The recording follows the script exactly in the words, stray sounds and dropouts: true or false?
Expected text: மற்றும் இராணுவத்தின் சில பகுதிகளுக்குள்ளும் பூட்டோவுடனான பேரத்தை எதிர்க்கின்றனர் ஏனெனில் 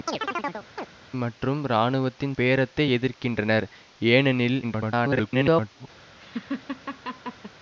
false